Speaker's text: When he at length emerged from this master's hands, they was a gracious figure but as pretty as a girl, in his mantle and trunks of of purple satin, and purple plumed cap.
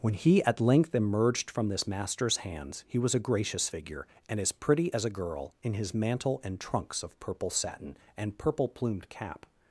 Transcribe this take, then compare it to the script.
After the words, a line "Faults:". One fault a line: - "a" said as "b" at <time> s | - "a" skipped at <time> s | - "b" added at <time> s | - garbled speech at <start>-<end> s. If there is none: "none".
When he at length emerged from this master's hands, he was a gracious figure and as pretty as a girl, in his mantle and trunks of purple satin, and purple plumed cap.
Faults:
- "they" said as "he" at 2.9 s
- "but" said as "and" at 4.3 s
- "of" skipped at 7.2 s